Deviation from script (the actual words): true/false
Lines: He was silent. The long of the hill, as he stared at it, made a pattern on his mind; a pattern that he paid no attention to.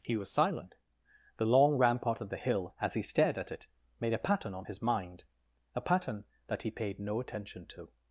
true